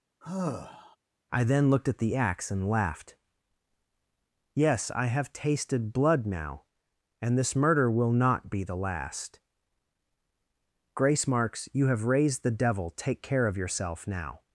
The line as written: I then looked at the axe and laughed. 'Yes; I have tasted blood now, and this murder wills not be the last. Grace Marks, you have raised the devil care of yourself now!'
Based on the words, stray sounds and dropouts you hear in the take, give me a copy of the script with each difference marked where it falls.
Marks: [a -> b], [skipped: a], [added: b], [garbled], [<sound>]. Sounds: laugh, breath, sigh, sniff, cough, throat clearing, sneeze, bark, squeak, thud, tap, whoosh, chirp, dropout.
[sigh] I then looked at the axe and laughed. 'Yes; I have tasted blood now, and this murder [wills -> will] not be the last. Grace Marks, you have raised the devil [added: take] care of yourself now!'